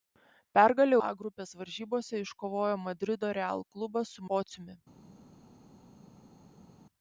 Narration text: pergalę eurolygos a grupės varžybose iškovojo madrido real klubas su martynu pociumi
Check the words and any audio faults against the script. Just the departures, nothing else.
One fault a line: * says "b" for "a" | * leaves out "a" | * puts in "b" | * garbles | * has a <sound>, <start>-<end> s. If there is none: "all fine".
* leaves out "eurolygos"
* leaves out "martynu"